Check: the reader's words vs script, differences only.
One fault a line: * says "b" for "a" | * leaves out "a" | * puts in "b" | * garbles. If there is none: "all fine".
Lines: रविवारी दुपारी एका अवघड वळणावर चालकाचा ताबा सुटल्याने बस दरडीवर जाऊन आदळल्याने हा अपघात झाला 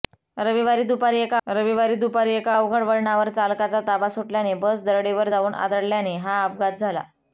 * puts in "रविवारी दुपारी एका"